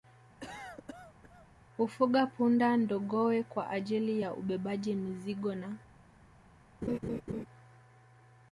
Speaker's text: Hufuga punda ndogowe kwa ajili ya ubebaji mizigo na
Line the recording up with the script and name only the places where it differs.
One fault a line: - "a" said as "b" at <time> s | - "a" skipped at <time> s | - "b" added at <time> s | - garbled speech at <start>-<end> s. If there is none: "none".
none